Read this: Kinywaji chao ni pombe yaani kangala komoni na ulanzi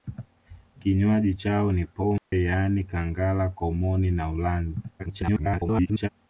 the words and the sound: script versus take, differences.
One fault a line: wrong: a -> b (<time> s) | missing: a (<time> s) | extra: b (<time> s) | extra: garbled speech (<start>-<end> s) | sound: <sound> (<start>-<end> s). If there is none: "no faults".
sound: dropout (2.2-2.3 s)
extra: garbled speech (5.0-6.1 s)